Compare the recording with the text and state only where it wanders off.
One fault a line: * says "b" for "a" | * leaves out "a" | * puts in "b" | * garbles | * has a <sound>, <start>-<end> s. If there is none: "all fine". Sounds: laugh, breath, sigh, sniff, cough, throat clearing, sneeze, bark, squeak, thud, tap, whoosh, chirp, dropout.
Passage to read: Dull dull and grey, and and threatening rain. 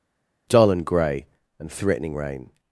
* leaves out "dull"
* leaves out "and"